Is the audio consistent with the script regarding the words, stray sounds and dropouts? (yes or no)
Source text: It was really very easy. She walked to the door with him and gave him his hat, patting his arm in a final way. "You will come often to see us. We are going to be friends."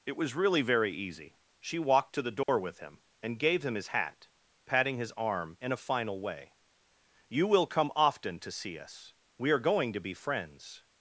no